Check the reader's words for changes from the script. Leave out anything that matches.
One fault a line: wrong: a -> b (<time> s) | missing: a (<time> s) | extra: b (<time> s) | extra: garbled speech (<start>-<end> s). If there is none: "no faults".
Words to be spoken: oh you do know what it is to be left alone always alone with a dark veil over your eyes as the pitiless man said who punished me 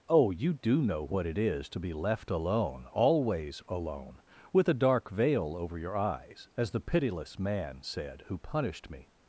no faults